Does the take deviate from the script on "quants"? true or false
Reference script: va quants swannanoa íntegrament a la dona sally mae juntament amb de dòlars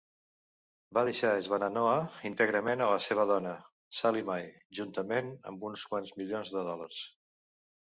true